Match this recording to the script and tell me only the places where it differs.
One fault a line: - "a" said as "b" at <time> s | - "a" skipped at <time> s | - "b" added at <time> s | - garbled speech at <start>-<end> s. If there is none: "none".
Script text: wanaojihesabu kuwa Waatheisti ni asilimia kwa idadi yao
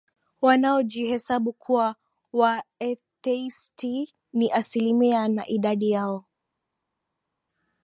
- "kwa" said as "na" at 5.3 s